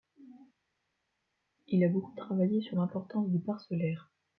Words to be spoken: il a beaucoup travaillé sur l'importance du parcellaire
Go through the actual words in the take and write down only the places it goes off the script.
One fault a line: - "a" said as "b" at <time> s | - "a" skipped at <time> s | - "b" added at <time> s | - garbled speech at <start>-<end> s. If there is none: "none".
none